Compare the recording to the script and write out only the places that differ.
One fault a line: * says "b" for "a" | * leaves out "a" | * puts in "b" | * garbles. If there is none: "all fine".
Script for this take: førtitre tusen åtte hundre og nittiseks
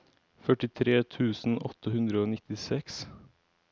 all fine